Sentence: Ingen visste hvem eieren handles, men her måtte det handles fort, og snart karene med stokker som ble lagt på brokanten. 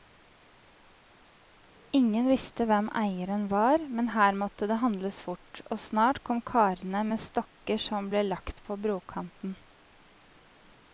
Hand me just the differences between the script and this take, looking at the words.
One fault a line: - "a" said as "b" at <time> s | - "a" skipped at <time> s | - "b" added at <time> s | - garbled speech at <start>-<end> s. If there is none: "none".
- "handles" said as "var" at 3.5 s
- "kom" added at 6.3 s